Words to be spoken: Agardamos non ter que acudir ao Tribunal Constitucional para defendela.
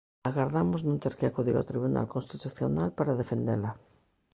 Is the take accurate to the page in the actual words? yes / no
yes